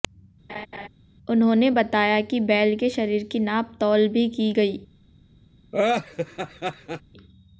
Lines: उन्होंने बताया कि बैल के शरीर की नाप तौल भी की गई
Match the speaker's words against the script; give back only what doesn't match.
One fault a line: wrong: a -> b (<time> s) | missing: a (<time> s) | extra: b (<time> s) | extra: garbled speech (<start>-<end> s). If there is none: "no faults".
no faults